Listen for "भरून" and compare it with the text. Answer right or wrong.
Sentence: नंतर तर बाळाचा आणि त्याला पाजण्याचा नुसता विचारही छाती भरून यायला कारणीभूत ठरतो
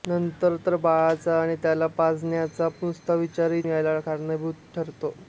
wrong